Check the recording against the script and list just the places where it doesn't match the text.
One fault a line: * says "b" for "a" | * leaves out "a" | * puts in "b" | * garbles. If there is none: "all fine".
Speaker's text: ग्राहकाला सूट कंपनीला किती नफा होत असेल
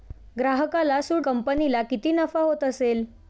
all fine